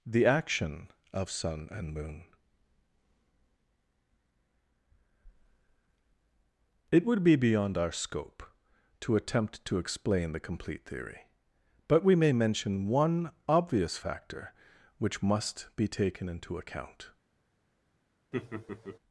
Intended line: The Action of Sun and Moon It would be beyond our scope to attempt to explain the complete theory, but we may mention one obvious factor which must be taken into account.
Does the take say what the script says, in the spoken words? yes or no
yes